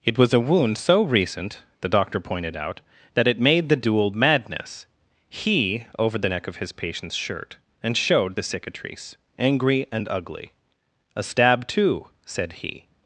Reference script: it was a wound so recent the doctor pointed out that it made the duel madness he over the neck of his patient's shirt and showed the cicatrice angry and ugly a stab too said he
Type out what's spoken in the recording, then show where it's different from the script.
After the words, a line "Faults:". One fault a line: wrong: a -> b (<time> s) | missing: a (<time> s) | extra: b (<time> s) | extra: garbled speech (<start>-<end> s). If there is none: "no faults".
it was a wound so recent the doctor pointed out that it made the duel madness he over the neck of his patient's shirt and showed the cicatrice angry and ugly a stab too said he
Faults:
no faults